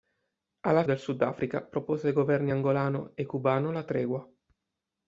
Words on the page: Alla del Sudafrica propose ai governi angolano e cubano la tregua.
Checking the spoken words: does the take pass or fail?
pass